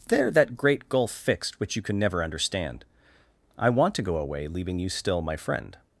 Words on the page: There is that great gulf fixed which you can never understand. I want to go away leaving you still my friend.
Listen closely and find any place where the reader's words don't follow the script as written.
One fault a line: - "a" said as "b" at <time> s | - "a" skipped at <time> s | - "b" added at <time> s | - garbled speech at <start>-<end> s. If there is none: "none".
- "is" skipped at 0.3 s